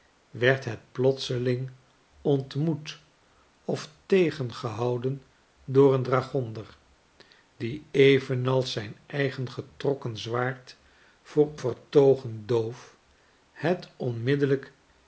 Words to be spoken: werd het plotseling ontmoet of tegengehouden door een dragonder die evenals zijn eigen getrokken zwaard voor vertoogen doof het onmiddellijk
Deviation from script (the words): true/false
false